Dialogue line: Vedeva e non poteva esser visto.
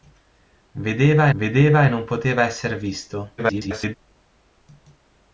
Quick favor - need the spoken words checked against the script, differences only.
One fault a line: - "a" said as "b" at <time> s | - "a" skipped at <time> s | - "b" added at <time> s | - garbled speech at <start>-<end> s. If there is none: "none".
- "vedeva" added at 1.4 s
- garbled speech at 3.4-3.9 s